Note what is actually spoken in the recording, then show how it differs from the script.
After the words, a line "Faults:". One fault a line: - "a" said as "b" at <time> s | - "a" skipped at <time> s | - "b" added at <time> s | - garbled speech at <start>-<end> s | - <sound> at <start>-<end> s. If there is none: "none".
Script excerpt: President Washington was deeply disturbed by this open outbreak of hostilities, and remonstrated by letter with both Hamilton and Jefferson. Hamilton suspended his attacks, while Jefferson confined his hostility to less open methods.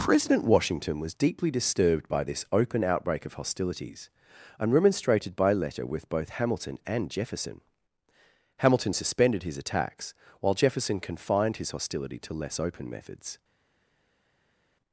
President Washington was deeply disturbed by this open outbreak of hostilities, and remonstrated by letter with both Hamilton and Jefferson. Hamilton suspended his attacks, while Jefferson confined his hostility to less open methods.
Faults:
none